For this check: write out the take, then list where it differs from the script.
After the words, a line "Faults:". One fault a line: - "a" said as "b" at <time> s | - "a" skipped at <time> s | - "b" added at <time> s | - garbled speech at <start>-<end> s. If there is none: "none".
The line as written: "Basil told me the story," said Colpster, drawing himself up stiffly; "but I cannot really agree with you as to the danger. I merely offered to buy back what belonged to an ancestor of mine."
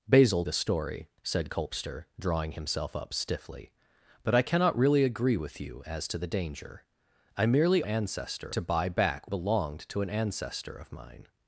"Basil the story," said Colpster, drawing himself up stiffly; "but I cannot really agree with you as to the danger. I merely ancestor to buy back belonged to an ancestor of mine."
Faults:
- "told me" skipped at 0.5 s
- "offered" said as "ancestor" at 7.8 s
- "what" skipped at 9.3 s